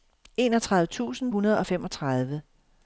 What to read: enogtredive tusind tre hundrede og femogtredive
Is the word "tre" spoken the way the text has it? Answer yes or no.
no